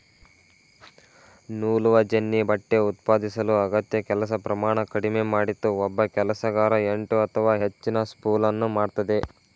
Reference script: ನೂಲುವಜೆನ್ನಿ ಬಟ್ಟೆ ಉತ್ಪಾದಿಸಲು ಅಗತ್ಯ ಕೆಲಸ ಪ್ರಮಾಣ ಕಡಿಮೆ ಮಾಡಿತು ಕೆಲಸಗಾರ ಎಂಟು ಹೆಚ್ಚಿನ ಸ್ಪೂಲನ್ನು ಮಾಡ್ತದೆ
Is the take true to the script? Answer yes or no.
no